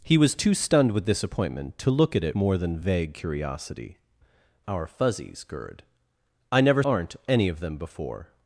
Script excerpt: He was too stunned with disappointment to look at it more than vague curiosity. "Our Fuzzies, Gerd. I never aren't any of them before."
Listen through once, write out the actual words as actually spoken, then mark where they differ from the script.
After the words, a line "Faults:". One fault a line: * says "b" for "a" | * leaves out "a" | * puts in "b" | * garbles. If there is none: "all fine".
He was too stunned with disappointment to look at it more than vague curiosity. "Our Fuzzies, Gerd. I never aren't any of them before."
Faults:
all fine